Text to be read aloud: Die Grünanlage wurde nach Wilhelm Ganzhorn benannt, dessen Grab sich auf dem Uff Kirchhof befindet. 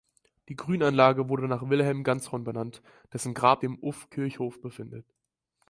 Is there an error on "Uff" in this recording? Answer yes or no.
no